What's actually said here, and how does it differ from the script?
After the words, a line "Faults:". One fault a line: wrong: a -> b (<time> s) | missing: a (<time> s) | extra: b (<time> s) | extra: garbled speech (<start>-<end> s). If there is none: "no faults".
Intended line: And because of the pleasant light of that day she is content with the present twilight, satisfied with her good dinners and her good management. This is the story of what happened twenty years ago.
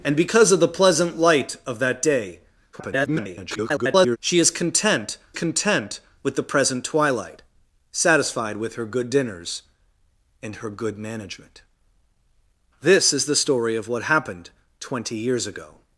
And because of the pleasant light of that day [garbled] she is content content with the present twilight, satisfied with her good dinners and her good management. This is the story of what happened twenty years ago.
Faults:
extra: garbled speech (2.7-4.2 s)
extra: content (5.3 s)